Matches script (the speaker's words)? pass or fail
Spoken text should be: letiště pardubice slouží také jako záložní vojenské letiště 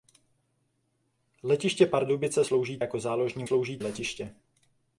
fail